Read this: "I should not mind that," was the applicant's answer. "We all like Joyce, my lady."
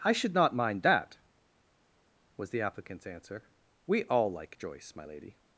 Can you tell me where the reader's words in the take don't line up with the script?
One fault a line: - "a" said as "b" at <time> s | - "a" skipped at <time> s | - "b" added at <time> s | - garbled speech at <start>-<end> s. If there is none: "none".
none